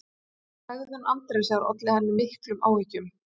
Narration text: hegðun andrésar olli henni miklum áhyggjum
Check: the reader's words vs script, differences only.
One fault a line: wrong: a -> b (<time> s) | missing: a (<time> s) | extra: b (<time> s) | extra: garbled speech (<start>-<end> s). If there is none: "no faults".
no faults